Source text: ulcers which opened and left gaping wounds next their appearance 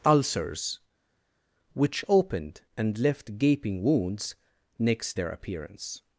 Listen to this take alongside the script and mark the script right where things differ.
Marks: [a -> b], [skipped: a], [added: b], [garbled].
ulcers which opened and left gaping wounds next their appearance